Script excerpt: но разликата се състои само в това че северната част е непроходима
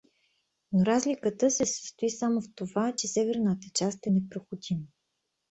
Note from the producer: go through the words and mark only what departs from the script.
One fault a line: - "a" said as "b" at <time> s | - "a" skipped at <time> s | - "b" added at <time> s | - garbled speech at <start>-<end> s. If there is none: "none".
none